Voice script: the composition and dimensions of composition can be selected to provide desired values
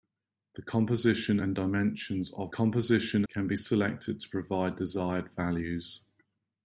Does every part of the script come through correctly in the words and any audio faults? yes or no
yes